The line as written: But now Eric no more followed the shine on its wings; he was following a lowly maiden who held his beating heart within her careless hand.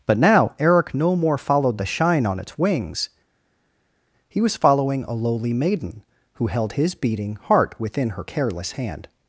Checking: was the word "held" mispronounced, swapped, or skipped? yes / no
no